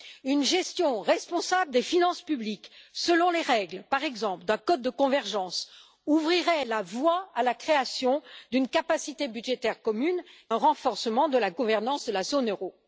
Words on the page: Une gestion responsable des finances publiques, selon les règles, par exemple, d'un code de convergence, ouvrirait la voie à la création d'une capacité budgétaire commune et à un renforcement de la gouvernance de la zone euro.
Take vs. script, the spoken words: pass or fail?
fail